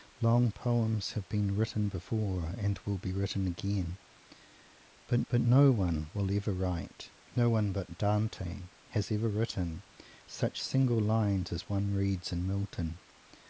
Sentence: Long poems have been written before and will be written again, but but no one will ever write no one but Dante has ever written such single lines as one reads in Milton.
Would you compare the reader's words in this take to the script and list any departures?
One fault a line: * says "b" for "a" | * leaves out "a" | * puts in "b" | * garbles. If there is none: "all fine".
all fine